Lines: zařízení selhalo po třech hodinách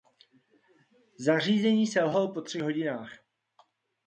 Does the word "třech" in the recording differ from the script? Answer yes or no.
no